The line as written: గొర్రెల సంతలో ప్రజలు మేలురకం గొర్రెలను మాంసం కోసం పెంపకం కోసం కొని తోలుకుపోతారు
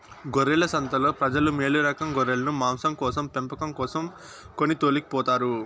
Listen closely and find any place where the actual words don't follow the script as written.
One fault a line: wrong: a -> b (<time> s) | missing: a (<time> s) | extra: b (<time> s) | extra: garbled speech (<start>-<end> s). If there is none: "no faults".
no faults